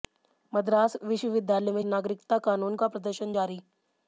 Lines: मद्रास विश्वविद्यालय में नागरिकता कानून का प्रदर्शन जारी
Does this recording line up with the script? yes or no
yes